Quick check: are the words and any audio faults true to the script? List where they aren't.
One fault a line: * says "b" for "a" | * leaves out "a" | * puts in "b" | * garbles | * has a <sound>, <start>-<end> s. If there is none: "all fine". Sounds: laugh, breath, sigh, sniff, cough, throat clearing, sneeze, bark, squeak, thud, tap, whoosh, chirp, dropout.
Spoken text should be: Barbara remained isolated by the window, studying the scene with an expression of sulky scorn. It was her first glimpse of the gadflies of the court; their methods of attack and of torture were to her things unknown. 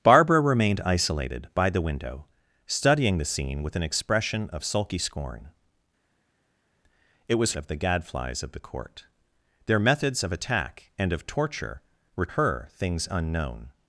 * leaves out "her first glimpse"
* leaves out "to"